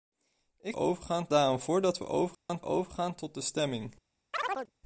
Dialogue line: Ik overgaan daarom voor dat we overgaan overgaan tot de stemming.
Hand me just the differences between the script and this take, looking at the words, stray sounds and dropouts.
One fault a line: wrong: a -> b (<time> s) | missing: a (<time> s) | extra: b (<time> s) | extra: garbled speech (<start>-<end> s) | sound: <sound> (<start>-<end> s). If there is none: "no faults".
sound: dropout (2.3-2.5 s)
sound: chirp (4.3-4.7 s)